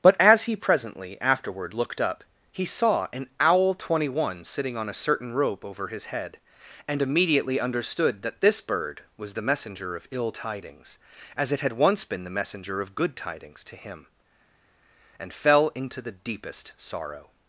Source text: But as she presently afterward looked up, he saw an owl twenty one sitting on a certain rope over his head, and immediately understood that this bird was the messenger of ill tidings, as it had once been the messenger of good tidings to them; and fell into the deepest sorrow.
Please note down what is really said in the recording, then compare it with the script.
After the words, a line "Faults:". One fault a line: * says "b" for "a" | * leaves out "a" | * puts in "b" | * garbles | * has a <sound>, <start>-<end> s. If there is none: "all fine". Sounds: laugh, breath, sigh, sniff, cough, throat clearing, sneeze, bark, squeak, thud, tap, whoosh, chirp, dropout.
But as he presently afterward looked up, he saw an owl twenty one sitting on a certain rope over his head, and immediately understood that this bird was the messenger of ill tidings, as it had once been the messenger of good tidings to him; and fell into the deepest sorrow.
Faults:
* says "he" for "she"
* says "him" for "them"